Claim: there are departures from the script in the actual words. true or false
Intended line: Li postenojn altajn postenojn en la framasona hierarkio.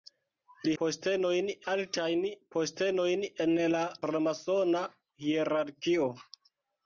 false